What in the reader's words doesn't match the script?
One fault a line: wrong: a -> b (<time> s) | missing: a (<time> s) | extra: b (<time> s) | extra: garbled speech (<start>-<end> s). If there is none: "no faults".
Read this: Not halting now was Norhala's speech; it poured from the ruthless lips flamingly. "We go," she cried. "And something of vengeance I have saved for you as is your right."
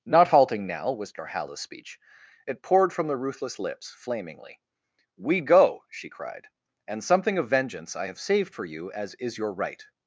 no faults